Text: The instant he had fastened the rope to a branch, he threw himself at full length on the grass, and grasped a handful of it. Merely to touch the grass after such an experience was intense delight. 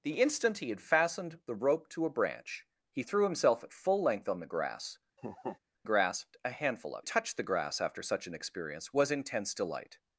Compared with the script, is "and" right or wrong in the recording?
wrong